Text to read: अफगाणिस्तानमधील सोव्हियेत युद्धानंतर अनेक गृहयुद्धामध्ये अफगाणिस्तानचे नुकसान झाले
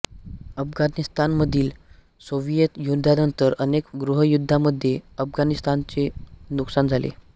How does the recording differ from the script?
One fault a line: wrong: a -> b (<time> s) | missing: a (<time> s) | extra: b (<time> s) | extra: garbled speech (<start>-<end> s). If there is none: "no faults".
no faults